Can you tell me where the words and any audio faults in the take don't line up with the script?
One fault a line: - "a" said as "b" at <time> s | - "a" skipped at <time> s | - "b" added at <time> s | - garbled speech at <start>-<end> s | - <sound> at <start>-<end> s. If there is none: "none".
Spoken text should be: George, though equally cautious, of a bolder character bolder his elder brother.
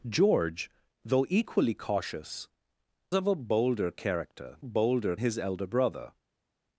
none